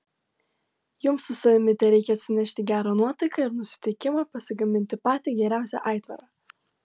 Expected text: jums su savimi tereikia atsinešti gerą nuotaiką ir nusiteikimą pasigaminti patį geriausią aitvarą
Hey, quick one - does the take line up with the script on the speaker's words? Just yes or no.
yes